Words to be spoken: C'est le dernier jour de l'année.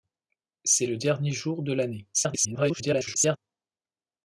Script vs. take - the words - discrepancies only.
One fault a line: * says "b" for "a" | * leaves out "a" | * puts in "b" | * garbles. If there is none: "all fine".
* garbles